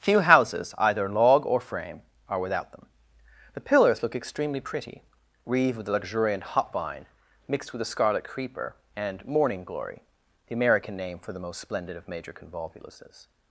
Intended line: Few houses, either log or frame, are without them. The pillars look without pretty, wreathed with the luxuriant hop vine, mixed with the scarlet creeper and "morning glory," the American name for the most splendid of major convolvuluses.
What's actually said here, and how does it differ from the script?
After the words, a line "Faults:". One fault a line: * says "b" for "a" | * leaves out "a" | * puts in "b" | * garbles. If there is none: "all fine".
Few houses, either log or frame, are without them. The pillars look extremely pretty, wreathed with the luxuriant hop vine, mixed with the scarlet creeper and "morning glory," the American name for the most splendid of major convolvuluses.
Faults:
* says "extremely" for "without"